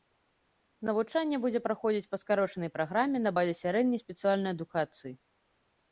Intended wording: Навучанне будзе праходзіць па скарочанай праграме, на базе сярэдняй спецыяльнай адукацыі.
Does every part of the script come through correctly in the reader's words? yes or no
yes